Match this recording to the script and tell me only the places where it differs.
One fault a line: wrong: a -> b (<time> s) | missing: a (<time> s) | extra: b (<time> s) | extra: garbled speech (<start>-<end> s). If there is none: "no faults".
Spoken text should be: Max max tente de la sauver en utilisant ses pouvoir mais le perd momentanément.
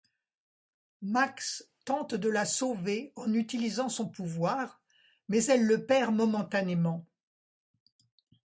missing: max (1.7 s)
wrong: ses -> son (3.9 s)
extra: elle (5.5 s)